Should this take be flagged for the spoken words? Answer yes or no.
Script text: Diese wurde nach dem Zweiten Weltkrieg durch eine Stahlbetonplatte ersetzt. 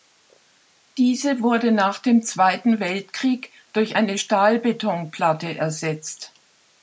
no